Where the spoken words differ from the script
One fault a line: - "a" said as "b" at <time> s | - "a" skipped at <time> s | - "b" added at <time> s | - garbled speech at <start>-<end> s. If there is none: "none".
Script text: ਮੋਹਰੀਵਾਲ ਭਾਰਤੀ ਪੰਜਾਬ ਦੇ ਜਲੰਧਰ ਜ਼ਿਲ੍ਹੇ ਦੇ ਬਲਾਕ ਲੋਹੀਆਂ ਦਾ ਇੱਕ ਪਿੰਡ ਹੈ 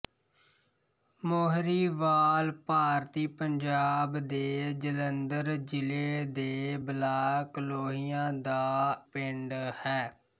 - "ਇੱਕ" skipped at 9.0 s